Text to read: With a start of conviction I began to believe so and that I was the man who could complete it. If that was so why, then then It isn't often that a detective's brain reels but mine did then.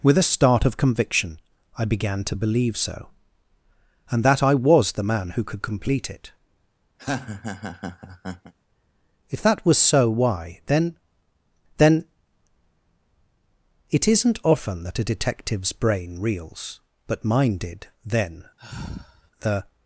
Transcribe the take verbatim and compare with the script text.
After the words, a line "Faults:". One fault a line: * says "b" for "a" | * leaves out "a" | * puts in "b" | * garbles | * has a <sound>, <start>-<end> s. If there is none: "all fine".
With a start of conviction I began to believe so and that I was the man who could complete it. If that was so why, then then It isn't often that a detective's brain reels but mine did then. The
Faults:
* has a laugh, 7.0-8.5 s
* has a sigh, 18.6-19.3 s
* puts in "The"